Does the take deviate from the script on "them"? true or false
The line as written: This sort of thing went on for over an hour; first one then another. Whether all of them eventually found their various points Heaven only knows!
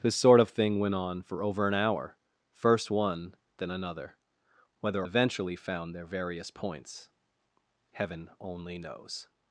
true